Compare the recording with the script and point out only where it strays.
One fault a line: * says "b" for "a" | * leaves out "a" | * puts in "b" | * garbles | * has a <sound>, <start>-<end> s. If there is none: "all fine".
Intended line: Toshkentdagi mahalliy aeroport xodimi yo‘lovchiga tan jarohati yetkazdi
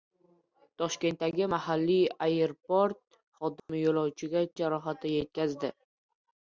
* has a dropout, 3.6-3.7 s
* leaves out "tan"